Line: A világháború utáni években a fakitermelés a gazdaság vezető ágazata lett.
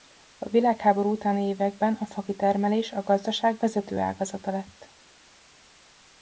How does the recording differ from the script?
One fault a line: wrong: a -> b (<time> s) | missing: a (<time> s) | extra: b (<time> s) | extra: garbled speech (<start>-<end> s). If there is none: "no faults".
no faults